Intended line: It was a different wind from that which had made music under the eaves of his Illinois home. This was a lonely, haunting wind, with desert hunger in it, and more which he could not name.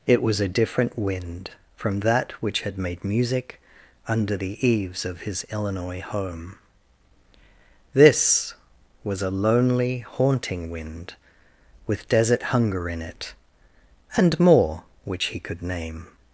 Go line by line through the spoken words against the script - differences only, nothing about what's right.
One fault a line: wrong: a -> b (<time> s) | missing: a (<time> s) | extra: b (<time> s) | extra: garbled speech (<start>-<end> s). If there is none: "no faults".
missing: not (15.6 s)